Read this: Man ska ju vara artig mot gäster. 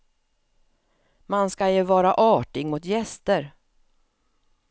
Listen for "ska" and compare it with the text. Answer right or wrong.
right